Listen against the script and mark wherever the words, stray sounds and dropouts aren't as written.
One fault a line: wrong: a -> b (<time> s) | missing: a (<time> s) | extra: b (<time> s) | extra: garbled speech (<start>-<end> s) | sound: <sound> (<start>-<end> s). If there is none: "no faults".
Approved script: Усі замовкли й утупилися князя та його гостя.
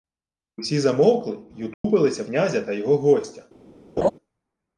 sound: dropout (1.7-1.8 s)
sound: laugh (4.0-4.1 s)